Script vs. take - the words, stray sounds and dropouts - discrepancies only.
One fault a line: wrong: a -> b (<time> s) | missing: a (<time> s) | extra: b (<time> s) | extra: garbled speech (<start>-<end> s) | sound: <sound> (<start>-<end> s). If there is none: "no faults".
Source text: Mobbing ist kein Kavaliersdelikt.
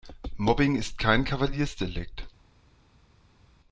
no faults